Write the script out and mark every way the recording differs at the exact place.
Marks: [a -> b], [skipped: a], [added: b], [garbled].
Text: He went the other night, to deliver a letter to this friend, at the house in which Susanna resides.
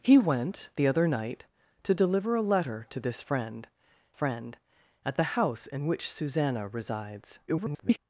He went the other night, to deliver a letter to this friend, [added: friend] at the house in which Susanna resides. [garbled]